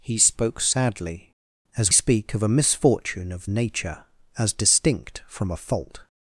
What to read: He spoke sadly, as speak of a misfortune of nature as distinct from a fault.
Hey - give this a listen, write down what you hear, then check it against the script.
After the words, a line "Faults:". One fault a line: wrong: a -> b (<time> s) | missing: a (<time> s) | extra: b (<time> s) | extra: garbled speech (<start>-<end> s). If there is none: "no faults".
He spoke sadly, as speak of a misfortune of nature as distinct from a fault.
Faults:
no faults